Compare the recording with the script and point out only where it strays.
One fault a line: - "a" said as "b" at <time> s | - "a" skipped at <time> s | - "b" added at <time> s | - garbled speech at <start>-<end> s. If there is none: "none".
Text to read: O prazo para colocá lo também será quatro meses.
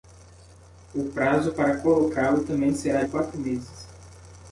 none